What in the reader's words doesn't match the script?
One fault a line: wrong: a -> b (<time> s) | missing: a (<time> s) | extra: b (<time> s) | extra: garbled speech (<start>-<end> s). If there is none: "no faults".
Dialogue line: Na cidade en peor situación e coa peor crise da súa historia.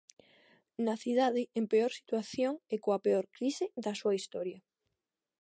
no faults